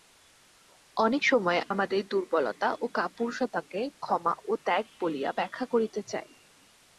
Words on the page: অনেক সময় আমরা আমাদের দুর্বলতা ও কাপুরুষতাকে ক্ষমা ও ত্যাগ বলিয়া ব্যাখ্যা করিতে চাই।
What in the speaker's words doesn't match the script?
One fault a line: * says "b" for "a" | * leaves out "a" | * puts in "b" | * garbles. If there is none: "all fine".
* leaves out "আমরা"